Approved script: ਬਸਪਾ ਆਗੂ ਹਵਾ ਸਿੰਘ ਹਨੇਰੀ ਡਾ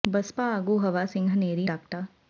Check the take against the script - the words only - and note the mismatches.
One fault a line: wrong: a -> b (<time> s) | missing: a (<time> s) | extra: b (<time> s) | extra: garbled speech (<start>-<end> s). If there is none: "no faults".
no faults